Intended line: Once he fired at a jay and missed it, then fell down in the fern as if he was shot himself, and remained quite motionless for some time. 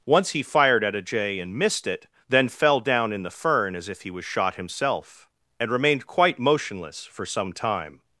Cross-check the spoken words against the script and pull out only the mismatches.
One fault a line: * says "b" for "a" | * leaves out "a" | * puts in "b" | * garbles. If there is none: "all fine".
all fine